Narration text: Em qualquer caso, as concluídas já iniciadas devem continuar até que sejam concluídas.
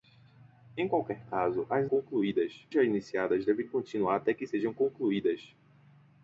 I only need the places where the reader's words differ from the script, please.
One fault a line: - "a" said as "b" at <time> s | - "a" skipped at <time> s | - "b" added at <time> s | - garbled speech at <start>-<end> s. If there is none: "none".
none